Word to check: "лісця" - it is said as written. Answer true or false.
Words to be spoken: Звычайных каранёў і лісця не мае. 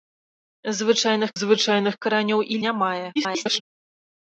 false